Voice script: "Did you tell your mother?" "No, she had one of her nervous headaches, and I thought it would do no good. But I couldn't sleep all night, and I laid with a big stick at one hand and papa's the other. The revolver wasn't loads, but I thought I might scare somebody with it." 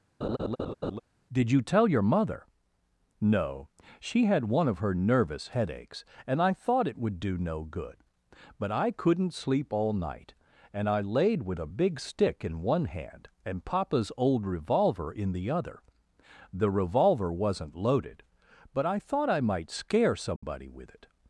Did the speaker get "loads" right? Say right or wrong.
wrong